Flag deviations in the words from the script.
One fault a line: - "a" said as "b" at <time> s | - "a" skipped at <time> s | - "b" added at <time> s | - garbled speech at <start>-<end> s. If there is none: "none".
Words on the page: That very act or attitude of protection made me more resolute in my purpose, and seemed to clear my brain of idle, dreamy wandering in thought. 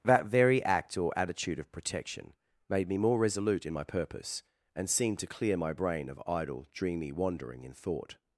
none